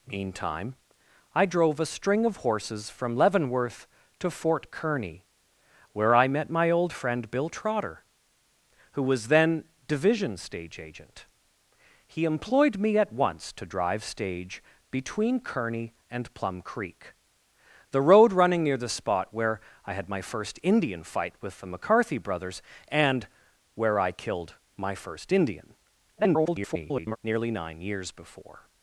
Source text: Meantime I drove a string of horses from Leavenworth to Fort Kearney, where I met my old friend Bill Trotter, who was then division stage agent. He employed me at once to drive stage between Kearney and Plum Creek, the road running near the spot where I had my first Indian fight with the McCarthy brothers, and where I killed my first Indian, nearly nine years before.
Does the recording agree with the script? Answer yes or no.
no